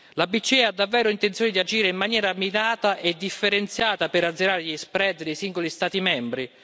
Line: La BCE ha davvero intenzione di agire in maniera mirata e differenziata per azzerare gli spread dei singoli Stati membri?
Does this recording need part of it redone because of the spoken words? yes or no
no